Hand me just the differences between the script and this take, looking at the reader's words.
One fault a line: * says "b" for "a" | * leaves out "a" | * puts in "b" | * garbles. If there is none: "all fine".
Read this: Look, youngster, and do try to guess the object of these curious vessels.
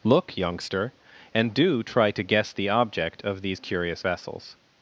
all fine